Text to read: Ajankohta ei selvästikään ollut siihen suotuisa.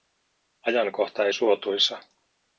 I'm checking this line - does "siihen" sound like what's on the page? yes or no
no